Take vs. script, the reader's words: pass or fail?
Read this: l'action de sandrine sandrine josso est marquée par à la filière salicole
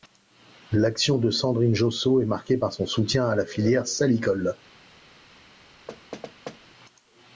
fail